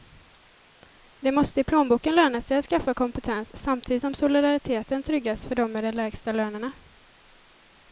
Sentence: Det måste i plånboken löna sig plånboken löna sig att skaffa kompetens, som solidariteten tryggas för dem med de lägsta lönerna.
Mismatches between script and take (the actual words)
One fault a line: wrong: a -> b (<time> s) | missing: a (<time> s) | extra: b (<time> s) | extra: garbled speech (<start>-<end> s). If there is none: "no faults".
missing: plånboken löna sig (2.6 s)
extra: samtidigt (3.5 s)